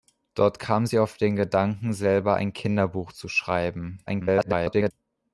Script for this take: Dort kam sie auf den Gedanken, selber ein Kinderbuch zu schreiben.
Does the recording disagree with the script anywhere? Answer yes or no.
yes